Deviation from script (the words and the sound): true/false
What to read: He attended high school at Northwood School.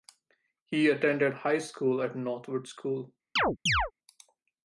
true